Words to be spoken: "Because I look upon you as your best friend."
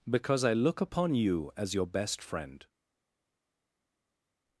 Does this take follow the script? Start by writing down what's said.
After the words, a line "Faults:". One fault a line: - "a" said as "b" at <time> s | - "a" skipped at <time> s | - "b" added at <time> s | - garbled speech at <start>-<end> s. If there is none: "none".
"Because I look upon you as your best friend."
Faults:
none